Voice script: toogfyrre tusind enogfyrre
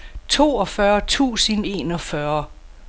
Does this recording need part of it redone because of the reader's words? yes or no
no